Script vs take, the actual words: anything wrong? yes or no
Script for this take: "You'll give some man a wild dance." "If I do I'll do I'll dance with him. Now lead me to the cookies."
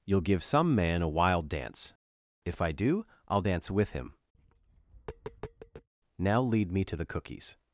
yes